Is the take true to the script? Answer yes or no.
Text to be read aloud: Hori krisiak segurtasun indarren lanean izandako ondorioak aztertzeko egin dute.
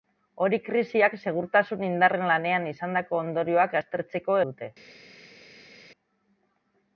no